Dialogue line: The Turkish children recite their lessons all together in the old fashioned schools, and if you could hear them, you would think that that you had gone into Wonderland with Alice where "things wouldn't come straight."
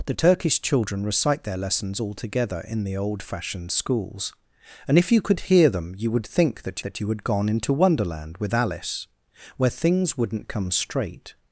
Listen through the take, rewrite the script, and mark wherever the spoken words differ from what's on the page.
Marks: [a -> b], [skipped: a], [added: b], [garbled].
The Turkish children recite their lessons all together in the old fashioned schools, and if you could hear them, you would think that that you had gone into Wonderland with Alice where "things wouldn't come straight."